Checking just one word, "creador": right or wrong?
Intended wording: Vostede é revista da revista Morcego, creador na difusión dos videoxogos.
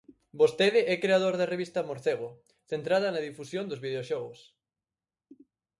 wrong